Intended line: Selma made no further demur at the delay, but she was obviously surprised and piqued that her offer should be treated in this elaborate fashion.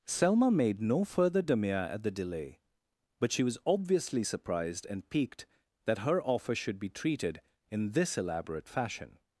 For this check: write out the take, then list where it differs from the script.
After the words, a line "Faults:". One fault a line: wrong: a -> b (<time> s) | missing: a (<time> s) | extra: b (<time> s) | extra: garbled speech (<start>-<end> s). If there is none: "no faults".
Selma made no further demur at the delay, but she was obviously surprised and piqued that her offer should be treated in this elaborate fashion.
Faults:
no faults